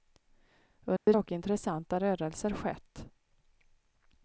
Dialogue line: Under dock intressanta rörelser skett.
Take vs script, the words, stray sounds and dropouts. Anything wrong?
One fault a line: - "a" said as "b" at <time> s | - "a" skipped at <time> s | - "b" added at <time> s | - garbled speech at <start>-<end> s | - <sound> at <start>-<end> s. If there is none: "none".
- dropout at 1.0-1.1 s